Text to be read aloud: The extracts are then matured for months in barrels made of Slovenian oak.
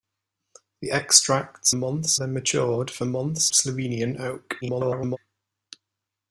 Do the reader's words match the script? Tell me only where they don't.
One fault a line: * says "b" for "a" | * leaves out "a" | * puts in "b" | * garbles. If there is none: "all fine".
* says "months" for "are"
* leaves out "in barrels made"
* garbles